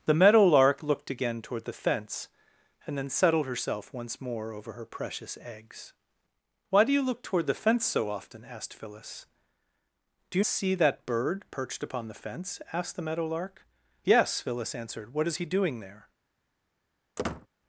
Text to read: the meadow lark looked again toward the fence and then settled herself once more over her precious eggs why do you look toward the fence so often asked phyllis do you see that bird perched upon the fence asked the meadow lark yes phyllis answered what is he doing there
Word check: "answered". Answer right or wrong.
right